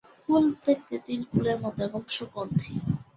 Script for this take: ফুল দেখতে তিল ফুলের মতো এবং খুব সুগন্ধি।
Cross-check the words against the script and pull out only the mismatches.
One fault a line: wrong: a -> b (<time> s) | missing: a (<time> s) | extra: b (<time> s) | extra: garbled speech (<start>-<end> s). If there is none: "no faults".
missing: খুব (2.0 s)